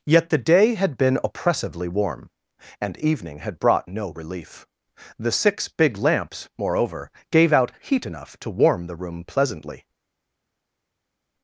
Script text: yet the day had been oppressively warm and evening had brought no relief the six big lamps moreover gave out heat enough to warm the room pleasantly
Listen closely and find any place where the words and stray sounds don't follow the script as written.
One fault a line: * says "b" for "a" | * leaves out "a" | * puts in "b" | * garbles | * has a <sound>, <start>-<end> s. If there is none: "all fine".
all fine